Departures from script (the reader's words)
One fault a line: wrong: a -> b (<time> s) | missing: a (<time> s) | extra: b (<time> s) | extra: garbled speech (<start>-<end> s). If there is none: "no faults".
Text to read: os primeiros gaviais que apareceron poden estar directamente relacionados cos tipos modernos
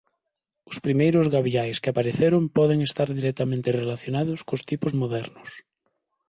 no faults